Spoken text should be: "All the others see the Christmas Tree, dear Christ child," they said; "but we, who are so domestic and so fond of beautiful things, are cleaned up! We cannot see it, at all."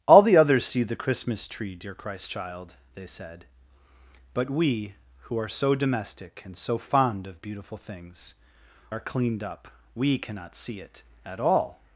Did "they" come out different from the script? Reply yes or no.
no